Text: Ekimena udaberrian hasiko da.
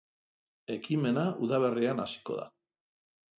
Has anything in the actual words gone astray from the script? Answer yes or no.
no